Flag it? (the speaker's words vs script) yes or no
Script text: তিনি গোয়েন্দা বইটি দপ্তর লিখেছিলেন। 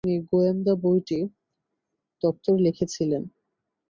no